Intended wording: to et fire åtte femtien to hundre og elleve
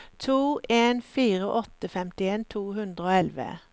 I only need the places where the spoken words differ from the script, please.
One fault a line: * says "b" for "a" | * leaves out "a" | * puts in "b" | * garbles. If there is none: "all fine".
* says "en" for "et"